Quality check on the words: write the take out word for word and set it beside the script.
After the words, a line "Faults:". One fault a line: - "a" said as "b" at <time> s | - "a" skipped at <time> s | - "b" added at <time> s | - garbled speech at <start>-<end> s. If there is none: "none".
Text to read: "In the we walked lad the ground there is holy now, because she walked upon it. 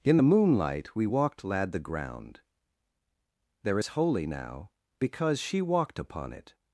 "In the moonlight we walked lad the ground there is holy now, because she walked upon it.
Faults:
- "moonlight" added at 0.3 s